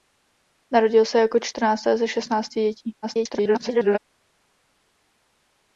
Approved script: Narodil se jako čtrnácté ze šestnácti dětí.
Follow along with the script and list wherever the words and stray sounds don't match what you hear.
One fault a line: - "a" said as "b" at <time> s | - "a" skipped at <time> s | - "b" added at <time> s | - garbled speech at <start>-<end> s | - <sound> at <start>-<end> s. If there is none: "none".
- garbled speech at 3.0-4.0 s